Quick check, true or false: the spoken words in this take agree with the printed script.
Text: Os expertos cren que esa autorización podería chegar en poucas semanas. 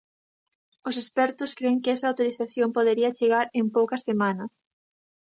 true